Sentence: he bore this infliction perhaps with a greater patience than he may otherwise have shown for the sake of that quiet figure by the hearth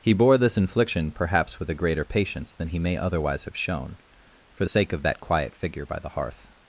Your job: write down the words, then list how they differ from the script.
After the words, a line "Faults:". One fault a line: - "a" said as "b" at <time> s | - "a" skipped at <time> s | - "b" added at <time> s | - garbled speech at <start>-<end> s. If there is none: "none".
he bore this infliction perhaps with a greater patience than he may otherwise have shown for the sake of that quiet figure by the hearth
Faults:
none